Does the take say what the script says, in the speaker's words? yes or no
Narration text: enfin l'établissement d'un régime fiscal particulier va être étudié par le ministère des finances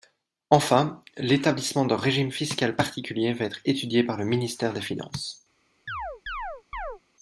yes